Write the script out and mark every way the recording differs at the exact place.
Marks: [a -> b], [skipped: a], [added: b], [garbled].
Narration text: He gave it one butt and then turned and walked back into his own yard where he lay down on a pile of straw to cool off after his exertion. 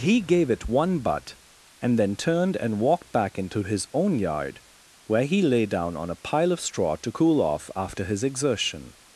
He gave it one butt and then turned and walked back into his own yard where he lay down on a pile of straw to cool off after his exertion.